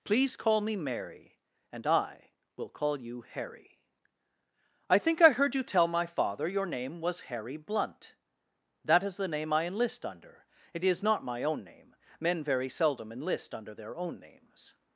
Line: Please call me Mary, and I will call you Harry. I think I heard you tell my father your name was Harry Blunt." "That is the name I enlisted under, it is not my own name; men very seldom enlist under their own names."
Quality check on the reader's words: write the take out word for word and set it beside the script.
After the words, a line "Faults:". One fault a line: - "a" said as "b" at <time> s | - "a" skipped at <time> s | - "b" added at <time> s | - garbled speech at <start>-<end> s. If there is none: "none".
Please call me Mary, and I will call you Harry. I think I heard you tell my father your name was Harry Blunt." "That is the name I enlist under, it is not my own name; men very seldom enlist under their own names."
Faults:
- "enlisted" said as "enlist" at 9.7 s